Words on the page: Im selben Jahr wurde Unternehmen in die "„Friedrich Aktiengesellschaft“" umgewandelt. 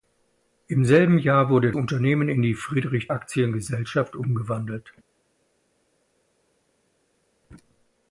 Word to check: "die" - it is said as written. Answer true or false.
true